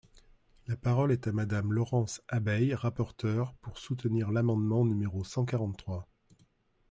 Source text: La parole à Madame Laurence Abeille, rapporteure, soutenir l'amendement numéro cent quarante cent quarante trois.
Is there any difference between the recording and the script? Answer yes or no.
yes